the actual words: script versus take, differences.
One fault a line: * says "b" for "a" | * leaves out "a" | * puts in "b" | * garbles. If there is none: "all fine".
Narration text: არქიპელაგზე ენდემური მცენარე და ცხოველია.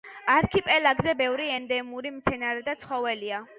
* puts in "ბევრი"